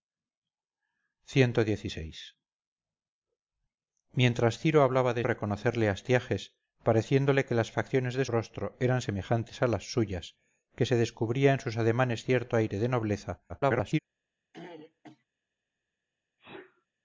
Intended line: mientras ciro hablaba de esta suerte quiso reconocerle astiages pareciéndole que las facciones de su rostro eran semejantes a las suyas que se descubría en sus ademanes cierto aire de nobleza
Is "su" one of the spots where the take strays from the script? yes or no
yes